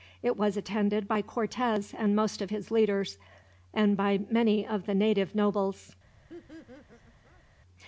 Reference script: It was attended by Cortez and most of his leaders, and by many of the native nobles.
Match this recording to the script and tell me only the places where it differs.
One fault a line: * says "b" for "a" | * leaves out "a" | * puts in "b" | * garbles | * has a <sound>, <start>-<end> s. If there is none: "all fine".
* has a laugh, 6.3-7.4 s